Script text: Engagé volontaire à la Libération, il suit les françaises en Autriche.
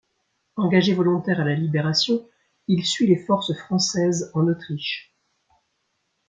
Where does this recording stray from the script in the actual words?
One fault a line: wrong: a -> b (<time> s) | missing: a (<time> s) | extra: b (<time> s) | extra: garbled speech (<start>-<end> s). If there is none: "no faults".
extra: forces (3.2 s)